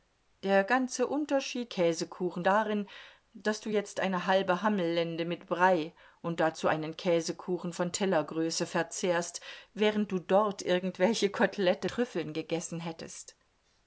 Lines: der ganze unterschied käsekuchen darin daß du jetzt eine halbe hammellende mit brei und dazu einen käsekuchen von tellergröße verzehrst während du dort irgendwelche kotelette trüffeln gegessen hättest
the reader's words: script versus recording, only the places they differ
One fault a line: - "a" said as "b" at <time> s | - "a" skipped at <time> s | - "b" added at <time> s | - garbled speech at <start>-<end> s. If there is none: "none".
none